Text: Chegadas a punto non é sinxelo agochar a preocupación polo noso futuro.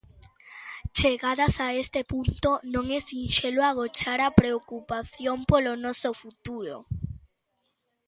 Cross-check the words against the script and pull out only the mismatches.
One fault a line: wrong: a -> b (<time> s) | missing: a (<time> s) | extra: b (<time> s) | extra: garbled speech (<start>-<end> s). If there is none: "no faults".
extra: este (1.8 s)